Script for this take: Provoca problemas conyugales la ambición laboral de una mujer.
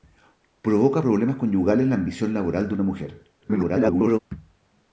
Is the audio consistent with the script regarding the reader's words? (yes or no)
no